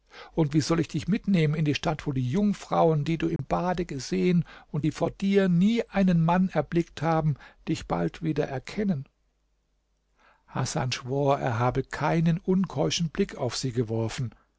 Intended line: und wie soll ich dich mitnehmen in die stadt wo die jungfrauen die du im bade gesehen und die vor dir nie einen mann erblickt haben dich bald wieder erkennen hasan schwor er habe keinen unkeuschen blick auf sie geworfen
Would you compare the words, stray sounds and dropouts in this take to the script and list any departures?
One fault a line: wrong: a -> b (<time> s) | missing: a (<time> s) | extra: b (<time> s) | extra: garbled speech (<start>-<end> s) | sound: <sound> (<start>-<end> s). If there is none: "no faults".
sound: dropout (3.4-3.4 s)